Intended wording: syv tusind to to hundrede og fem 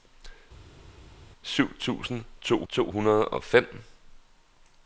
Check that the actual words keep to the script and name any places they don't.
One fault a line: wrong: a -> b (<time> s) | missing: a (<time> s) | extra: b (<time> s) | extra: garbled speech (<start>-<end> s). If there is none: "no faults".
no faults